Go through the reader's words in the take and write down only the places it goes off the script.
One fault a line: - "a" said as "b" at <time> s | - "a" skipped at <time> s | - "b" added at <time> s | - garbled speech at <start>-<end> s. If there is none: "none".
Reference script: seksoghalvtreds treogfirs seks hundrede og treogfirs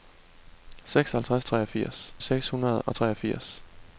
none